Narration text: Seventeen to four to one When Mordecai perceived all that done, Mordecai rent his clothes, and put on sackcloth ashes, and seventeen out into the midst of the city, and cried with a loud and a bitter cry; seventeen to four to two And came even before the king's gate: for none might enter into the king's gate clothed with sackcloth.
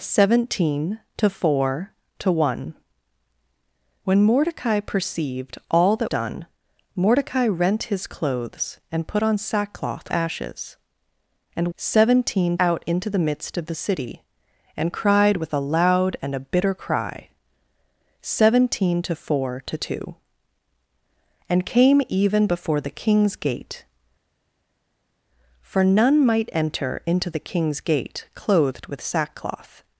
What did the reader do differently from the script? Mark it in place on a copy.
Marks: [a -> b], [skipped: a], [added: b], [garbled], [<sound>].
Seventeen to four to one When Mordecai perceived all that done, Mordecai rent his clothes, and put on sackcloth ashes, and seventeen out into the midst of the city, and cried with a loud and a bitter cry; seventeen to four to two And came even before the king's gate: for none might enter into the king's gate clothed with sackcloth.